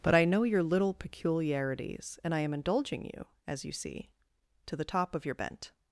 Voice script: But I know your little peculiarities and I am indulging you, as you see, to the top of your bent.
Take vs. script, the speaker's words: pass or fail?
pass